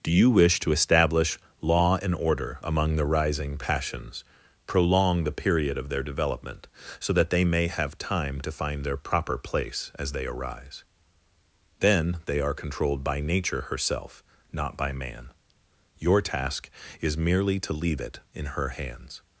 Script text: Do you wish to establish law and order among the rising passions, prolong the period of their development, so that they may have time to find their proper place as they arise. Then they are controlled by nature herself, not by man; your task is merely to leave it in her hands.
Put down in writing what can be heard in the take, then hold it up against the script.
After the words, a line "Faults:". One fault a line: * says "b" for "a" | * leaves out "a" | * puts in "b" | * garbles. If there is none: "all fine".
Do you wish to establish law and order among the rising passions, prolong the period of their development, so that they may have time to find their proper place as they arise. Then they are controlled by nature herself, not by man; your task is merely to leave it in her hands.
Faults:
all fine